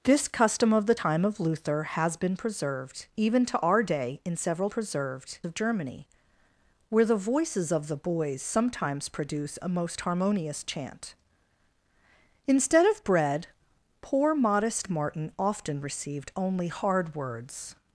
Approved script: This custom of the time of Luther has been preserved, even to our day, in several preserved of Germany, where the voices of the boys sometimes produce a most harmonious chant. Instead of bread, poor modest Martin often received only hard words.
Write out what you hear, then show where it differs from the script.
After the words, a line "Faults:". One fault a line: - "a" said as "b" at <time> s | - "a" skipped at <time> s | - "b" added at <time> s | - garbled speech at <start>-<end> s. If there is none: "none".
This custom of the time of Luther has been preserved, even to our day, in several preserved of Germany, where the voices of the boys sometimes produce a most harmonious chant. Instead of bread, poor modest Martin often received only hard words.
Faults:
none